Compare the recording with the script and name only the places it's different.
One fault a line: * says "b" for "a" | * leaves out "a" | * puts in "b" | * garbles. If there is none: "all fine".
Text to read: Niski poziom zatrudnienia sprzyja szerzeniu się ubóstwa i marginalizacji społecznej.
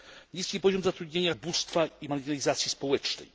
* leaves out "sprzyja szerzeniu się"